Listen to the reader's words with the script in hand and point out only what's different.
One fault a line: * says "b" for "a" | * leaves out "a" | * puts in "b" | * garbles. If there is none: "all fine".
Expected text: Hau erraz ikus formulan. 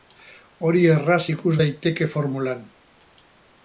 * says "Hori" for "Hau"
* puts in "daiteke"